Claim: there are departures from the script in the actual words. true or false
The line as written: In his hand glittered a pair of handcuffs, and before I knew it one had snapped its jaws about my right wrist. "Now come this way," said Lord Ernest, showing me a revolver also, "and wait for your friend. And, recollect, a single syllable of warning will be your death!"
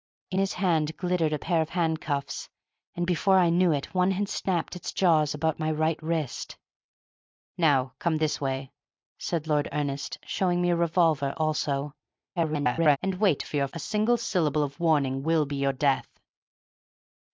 true